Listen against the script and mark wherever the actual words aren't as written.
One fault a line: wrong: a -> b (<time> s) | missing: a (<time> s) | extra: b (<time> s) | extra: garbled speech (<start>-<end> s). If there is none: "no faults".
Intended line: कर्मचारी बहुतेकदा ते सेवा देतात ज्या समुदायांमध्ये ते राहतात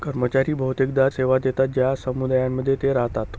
missing: ते (1.1 s)